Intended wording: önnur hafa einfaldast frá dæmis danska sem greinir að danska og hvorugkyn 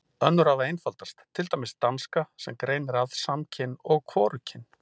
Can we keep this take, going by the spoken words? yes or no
no